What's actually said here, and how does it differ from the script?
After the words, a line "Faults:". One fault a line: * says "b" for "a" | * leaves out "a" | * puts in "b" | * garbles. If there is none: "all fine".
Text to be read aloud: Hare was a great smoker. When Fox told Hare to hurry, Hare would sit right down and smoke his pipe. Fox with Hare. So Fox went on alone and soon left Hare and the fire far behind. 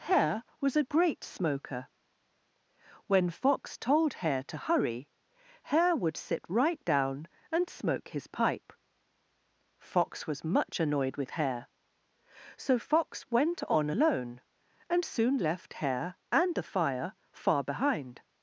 Hare was a great smoker. When Fox told Hare to hurry, Hare would sit right down and smoke his pipe. Fox was much annoyed with Hare. So Fox went on alone and soon left Hare and the fire far behind.
Faults:
* puts in "was much annoyed"